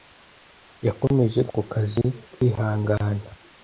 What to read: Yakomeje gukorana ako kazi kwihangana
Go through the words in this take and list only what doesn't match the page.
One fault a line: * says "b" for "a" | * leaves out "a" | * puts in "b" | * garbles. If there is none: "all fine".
* leaves out "gukorana"